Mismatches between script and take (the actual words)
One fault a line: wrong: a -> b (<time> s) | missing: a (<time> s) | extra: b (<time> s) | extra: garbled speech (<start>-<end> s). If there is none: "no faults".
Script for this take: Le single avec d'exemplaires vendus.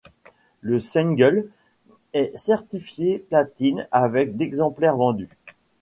extra: est certifié platine (2.1 s)